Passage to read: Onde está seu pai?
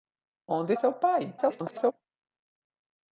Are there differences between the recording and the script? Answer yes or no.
yes